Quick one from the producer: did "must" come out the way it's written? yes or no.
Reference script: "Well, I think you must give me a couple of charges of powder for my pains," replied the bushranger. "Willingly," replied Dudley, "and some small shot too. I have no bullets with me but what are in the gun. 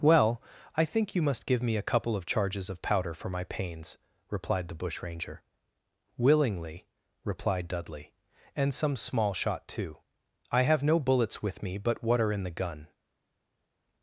yes